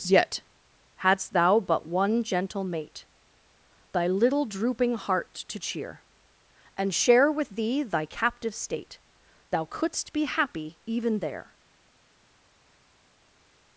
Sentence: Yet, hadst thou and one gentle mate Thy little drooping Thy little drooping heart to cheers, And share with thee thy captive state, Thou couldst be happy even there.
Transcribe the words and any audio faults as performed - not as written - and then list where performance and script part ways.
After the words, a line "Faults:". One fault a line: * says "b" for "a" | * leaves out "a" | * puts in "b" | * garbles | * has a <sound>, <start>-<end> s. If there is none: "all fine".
Yet, hadst thou but one gentle mate Thy little drooping heart to cheer, And share with thee thy captive state, Thou couldst be happy even there.
Faults:
* says "but" for "and"
* leaves out "Thy little drooping"
* says "cheer" for "cheers"